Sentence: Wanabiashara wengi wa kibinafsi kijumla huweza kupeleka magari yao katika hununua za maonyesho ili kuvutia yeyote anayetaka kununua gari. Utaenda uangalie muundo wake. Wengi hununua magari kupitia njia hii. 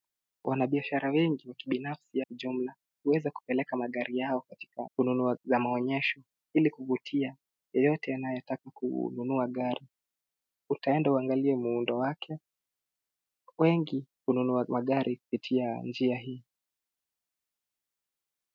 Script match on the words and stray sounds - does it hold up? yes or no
yes